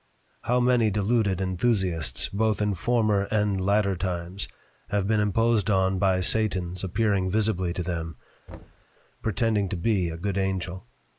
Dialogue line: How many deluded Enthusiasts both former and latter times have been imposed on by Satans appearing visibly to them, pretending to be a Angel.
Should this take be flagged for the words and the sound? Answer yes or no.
yes